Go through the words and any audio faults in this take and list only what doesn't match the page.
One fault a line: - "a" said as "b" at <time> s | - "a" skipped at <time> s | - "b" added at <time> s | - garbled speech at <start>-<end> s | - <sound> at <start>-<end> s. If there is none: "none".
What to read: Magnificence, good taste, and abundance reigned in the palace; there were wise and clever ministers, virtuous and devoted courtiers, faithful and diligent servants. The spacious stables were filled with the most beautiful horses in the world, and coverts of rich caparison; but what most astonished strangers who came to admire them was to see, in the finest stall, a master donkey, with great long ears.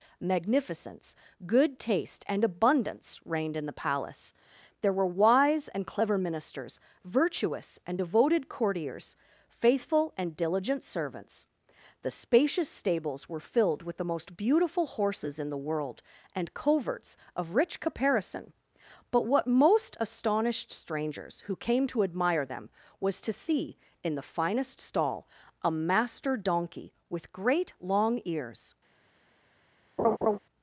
- laugh at 30.0-30.4 s